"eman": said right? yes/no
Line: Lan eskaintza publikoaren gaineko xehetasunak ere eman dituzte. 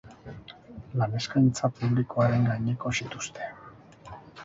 no